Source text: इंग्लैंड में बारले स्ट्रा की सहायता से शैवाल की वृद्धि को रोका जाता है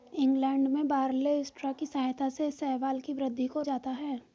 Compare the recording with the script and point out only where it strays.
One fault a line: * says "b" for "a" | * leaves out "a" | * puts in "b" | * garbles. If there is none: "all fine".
* leaves out "रोका"